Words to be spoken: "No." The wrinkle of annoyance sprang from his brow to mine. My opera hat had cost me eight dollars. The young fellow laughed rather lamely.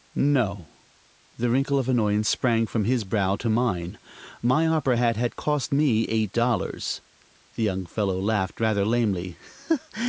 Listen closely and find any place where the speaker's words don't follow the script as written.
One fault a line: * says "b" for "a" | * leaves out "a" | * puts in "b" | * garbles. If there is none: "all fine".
all fine